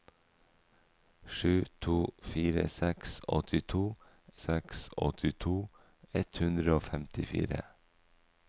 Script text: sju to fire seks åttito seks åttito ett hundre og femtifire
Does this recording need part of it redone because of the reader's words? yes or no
no